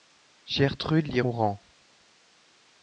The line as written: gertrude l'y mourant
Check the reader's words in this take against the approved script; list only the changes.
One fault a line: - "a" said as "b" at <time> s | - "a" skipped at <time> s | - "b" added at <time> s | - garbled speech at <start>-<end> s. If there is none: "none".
none